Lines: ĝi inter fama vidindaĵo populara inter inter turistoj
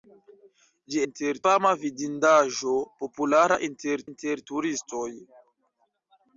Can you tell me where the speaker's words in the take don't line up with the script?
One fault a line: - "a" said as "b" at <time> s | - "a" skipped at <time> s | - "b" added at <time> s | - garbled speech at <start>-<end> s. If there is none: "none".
none